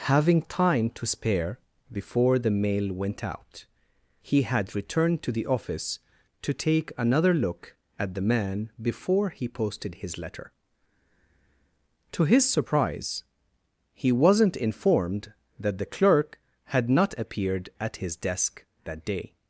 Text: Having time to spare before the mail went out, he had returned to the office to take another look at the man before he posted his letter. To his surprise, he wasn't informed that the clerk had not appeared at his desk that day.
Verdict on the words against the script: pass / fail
pass